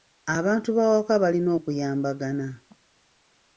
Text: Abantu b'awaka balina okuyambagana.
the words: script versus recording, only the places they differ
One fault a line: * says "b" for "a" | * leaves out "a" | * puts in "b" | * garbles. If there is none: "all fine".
all fine